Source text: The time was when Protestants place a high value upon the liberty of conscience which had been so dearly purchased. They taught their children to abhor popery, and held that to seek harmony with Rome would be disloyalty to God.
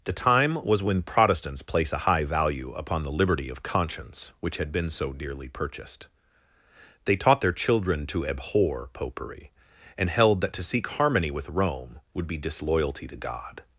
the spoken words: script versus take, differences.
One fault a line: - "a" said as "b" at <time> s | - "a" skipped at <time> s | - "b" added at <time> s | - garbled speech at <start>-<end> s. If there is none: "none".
none